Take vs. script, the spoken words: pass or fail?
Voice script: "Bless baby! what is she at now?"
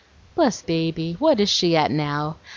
pass